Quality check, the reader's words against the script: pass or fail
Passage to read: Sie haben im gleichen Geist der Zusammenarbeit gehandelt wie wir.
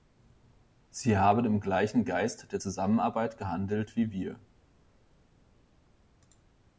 pass